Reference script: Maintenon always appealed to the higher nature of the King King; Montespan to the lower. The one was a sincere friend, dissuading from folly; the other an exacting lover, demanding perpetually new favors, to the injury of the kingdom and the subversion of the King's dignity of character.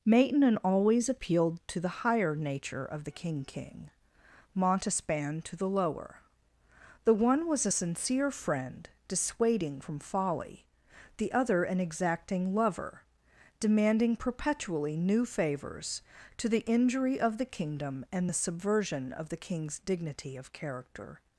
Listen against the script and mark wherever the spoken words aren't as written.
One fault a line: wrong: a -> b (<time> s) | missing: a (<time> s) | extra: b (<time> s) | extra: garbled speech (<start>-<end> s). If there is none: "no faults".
no faults